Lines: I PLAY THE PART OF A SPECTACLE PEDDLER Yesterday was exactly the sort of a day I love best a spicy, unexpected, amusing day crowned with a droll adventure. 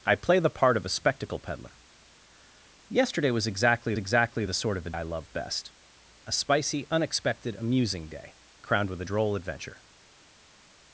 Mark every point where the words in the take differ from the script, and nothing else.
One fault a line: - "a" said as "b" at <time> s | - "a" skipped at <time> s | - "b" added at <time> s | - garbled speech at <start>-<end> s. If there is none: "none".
- "exactly" added at 4.0 s
- "day" skipped at 4.9 s